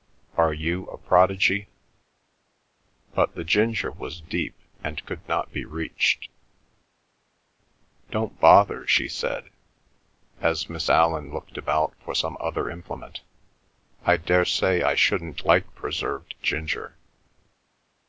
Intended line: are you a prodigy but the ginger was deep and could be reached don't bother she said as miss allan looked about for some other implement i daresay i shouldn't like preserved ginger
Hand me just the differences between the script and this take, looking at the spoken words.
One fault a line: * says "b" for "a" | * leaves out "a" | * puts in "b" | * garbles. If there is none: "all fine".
* puts in "not"